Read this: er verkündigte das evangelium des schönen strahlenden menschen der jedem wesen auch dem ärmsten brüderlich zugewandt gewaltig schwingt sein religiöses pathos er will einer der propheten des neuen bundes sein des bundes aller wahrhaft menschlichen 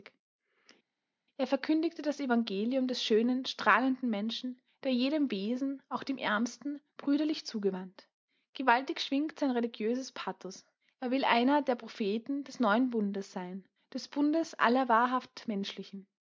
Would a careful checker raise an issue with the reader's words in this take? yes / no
no